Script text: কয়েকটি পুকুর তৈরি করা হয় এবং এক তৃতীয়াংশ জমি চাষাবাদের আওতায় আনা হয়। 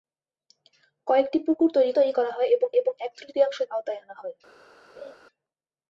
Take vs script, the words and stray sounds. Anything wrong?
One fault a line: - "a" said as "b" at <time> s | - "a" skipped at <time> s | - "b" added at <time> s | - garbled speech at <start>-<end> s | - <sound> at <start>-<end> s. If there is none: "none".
- "তৈরি" added at 1.9 s
- "এবং" added at 2.7 s
- "জমি চাষাবাদের" skipped at 3.6 s
- laugh at 5.0-5.2 s